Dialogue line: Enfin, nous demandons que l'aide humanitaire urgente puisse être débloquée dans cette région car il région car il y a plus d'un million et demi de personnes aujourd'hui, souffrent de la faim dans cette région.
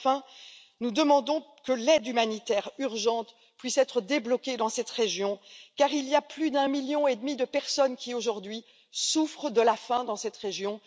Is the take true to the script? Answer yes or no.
no